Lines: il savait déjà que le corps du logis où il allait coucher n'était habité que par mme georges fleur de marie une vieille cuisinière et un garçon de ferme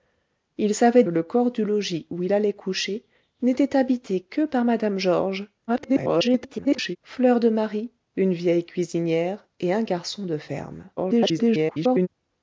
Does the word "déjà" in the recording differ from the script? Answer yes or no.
yes